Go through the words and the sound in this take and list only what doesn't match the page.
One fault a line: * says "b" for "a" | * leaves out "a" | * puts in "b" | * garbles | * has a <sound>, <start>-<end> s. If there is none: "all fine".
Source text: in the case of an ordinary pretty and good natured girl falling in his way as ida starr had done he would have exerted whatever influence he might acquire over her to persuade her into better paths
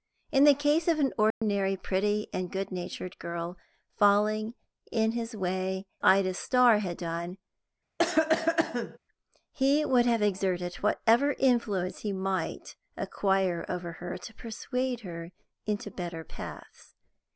* has a dropout, 1.3-1.4 s
* leaves out "as"
* has a cough, 8.0-9.0 s